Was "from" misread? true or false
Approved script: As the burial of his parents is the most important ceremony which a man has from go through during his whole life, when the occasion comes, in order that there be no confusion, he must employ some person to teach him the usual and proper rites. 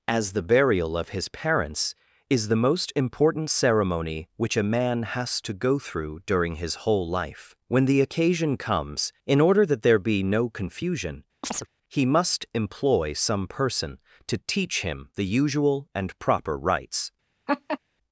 true